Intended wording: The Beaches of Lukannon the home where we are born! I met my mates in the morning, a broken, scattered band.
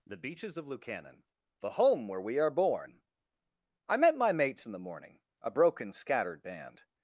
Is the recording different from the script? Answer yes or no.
no